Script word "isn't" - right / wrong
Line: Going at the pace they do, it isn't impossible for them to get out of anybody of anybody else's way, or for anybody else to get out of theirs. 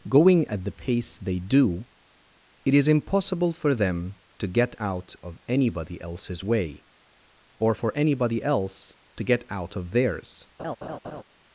wrong